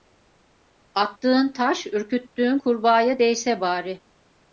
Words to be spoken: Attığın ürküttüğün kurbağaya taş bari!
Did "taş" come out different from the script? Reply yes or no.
yes